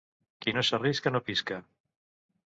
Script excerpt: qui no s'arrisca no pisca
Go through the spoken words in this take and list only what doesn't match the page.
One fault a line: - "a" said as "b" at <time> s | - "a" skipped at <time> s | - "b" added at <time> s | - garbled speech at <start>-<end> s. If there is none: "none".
none